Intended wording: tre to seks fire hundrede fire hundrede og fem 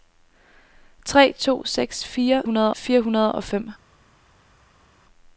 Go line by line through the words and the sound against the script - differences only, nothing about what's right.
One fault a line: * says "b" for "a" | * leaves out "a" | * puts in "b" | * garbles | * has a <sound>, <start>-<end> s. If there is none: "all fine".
all fine